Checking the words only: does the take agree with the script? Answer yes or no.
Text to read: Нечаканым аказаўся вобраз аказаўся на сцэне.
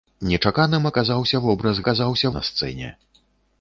yes